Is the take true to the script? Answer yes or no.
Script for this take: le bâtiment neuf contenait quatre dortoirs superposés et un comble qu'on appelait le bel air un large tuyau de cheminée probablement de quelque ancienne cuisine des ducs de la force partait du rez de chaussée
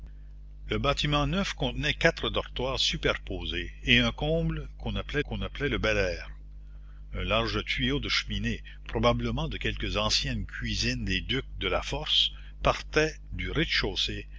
no